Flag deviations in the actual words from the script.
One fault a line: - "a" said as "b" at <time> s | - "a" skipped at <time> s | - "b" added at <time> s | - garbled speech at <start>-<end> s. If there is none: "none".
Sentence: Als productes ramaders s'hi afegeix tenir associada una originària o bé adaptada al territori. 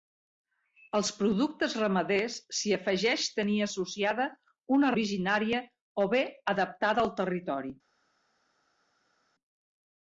none